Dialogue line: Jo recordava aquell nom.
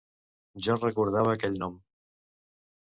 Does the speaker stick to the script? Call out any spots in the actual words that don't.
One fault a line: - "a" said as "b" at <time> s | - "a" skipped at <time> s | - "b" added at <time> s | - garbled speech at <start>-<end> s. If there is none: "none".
none